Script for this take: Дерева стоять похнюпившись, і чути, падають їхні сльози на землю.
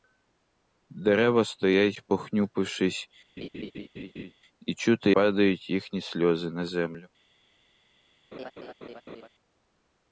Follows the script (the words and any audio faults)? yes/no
no